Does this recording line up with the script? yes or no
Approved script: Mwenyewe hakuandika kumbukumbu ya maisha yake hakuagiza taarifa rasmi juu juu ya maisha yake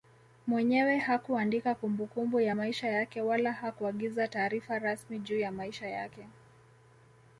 no